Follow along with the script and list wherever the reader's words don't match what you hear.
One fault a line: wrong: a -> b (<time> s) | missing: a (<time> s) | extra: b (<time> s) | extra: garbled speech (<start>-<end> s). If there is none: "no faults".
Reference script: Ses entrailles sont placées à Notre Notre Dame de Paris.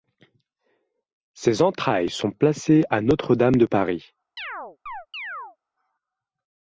missing: Notre (3.4 s)